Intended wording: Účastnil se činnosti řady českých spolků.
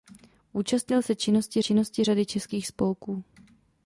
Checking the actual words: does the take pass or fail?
fail